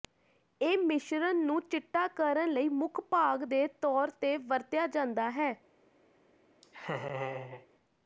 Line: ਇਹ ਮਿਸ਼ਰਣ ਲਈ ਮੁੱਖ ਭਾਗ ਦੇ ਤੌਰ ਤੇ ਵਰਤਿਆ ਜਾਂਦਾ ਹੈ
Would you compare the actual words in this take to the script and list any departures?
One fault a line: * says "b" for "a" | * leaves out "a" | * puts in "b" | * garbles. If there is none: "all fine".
* puts in "ਨੂੰ ਚਿੱਟਾ ਕਰਨ"